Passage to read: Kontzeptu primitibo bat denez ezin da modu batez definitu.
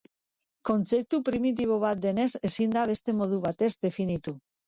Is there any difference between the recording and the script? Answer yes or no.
yes